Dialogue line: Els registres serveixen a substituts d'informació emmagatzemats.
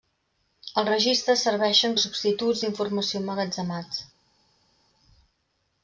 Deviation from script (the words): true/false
false